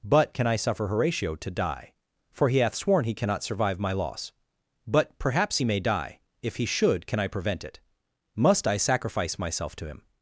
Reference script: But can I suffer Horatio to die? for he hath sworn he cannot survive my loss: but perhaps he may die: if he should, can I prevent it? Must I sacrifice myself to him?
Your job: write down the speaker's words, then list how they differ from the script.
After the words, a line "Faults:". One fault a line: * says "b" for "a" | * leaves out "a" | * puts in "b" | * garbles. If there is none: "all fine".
But can I suffer Horatio to die? for he hath sworn he cannot survive my loss: but perhaps he may die: if he should, can I prevent it? Must I sacrifice myself to him?
Faults:
all fine